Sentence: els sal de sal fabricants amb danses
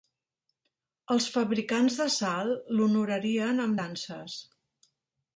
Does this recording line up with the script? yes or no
no